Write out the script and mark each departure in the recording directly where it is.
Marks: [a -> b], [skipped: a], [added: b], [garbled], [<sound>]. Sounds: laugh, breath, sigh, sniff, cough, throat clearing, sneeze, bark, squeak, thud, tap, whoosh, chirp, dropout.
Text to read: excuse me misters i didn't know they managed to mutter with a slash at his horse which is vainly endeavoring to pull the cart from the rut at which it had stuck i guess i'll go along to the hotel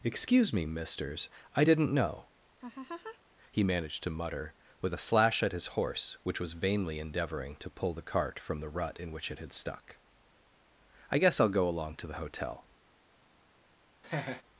excuse me misters i didn't know [laugh] [they -> he] managed to mutter with a slash at his horse which [is -> was] vainly endeavoring to pull the cart from the rut [at -> in] which it had stuck i guess i'll go along to the hotel [laugh]